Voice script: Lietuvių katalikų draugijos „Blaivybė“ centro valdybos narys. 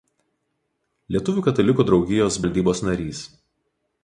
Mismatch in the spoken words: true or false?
true